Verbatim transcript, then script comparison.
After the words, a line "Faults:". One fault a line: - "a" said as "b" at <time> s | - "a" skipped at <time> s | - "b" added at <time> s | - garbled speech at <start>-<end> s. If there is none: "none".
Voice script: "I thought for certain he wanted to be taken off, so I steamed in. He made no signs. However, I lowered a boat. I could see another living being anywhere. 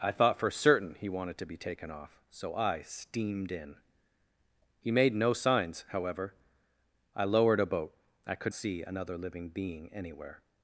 "I thought for certain he wanted to be taken off, so I steamed in. He made no signs. However, I lowered a boat. I could see another living being anywhere.
Faults:
none